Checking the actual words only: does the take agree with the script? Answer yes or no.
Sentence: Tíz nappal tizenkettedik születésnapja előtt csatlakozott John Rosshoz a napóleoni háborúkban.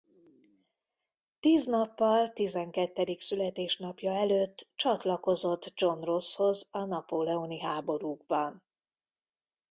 yes